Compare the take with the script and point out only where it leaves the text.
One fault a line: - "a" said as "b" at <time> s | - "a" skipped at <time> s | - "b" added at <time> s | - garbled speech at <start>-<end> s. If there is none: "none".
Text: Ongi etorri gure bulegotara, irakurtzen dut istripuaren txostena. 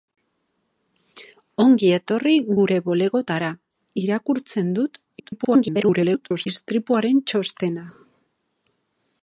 - garbled speech at 5.2-6.5 s